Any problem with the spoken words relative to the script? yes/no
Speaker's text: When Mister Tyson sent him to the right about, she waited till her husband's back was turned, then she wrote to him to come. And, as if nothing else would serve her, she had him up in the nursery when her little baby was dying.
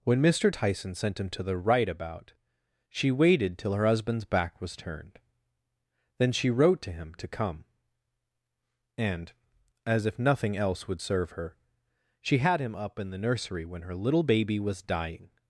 no